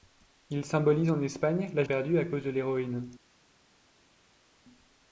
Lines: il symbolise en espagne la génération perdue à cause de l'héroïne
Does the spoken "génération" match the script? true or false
false